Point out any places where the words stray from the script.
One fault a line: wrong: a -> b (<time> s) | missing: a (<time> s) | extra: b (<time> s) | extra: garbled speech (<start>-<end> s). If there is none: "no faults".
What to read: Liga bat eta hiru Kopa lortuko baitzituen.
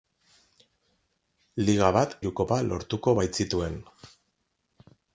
missing: eta (2.1 s)